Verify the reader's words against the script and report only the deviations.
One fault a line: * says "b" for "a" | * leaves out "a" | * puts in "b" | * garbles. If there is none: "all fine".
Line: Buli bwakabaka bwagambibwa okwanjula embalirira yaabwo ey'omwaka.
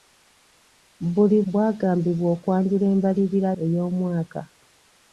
* leaves out "bwakabaka"
* leaves out "yaabwo"